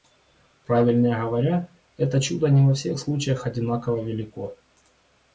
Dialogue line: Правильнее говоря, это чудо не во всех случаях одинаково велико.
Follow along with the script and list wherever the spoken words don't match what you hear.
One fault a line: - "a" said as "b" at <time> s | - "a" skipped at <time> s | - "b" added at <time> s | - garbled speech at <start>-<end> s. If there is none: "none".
none